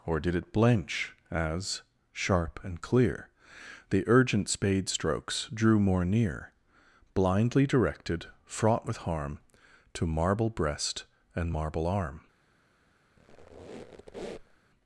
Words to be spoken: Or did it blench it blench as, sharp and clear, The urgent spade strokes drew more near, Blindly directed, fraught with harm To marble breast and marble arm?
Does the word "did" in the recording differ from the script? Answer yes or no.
no